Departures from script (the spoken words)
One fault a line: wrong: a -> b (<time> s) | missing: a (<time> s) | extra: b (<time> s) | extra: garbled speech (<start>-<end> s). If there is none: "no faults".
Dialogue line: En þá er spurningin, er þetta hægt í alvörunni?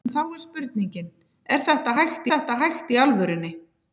extra: þetta hægt (2.3 s)